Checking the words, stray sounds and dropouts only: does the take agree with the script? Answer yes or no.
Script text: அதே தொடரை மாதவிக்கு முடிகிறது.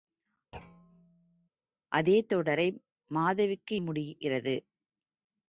no